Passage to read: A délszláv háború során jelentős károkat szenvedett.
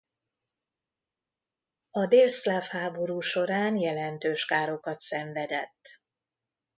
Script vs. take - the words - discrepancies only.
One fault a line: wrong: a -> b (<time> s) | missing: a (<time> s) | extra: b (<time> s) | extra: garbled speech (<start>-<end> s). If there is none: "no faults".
no faults